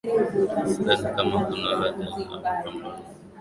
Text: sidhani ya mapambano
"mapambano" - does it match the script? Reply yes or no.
yes